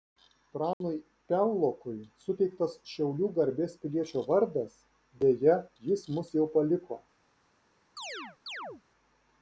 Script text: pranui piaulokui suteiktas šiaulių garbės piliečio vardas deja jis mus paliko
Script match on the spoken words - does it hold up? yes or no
no